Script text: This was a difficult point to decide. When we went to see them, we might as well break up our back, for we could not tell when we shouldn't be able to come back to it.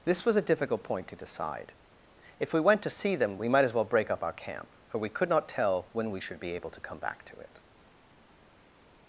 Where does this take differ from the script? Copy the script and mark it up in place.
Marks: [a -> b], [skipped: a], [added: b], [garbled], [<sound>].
This was a difficult point to decide. [When -> If] we went to see them, we might as well break up our [back, -> camp] for we could not tell when we [shouldn't -> should] be able to come back to it.